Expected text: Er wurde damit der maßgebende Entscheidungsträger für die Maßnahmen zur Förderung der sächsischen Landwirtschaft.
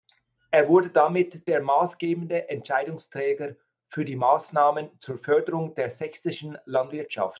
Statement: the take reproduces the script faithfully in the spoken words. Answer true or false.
true